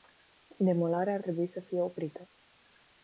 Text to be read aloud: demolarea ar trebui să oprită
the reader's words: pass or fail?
fail